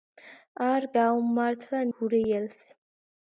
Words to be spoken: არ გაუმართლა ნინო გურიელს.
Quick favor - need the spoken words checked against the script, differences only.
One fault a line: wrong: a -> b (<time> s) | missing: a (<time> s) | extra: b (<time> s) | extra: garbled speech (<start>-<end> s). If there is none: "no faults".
missing: ნინო (1.8 s)